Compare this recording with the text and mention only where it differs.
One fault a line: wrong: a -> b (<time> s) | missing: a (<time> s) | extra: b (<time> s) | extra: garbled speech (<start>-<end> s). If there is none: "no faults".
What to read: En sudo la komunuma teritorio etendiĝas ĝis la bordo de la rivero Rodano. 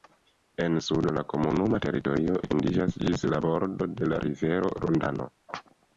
no faults